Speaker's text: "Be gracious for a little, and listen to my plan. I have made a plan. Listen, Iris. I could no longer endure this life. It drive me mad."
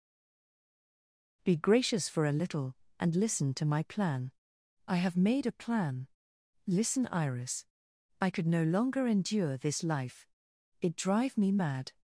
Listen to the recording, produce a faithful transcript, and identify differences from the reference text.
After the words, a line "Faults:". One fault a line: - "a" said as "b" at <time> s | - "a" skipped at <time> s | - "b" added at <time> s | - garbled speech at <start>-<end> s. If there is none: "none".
"Be gracious for a little, and listen to my plan. I have made a plan. Listen, Iris. I could no longer endure this life. It drive me mad."
Faults:
none